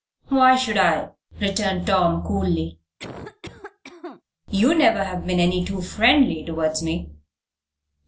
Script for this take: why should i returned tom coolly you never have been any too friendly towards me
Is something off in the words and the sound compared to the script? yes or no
yes